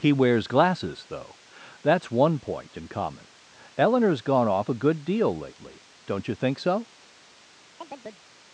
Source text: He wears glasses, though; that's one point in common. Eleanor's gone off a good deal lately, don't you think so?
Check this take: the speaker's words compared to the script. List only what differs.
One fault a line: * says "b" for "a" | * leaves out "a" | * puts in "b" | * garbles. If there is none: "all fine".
all fine